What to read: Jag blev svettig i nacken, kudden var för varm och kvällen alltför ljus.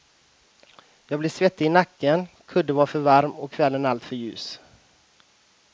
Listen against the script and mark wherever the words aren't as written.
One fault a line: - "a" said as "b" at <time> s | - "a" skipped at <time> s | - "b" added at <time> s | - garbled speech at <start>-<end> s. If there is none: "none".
none